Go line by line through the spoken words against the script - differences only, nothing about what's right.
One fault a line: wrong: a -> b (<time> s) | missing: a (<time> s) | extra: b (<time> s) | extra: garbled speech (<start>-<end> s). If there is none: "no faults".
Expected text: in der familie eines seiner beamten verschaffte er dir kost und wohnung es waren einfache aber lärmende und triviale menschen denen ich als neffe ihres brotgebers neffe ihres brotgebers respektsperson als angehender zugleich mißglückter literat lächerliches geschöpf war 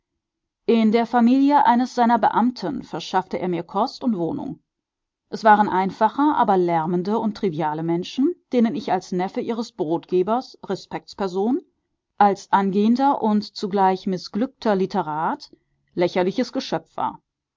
wrong: dir -> mir (3.5 s)
missing: neffe ihres brotgebers (10.6 s)
extra: und (13.2 s)